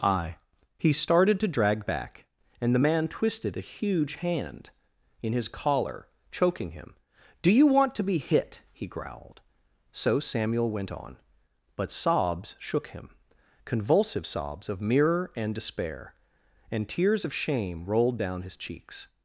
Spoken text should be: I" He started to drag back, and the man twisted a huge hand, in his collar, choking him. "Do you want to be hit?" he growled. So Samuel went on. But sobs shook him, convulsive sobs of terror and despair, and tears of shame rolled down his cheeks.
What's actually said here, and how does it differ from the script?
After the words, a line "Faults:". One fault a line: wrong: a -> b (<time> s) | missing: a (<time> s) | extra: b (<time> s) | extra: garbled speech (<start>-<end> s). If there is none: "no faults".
I" He started to drag back, and the man twisted a huge hand, in his collar, choking him. "Do you want to be hit?" he growled. So Samuel went on. But sobs shook him, convulsive sobs of mirror and despair, and tears of shame rolled down his cheeks.
Faults:
wrong: terror -> mirror (14.8 s)